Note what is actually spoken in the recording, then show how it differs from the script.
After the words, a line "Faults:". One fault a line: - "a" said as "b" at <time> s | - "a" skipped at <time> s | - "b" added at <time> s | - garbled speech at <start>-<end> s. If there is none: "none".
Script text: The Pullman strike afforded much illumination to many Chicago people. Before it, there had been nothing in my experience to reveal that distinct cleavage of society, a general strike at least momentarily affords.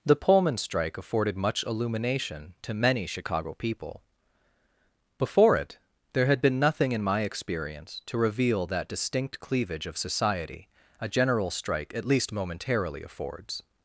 The Pullman strike afforded much illumination to many Chicago people. Before it, there had been nothing in my experience to reveal that distinct cleavage of society, a general strike at least momentarily affords.
Faults:
none